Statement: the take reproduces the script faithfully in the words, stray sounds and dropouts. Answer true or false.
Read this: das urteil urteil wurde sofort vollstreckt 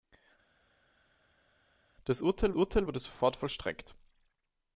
true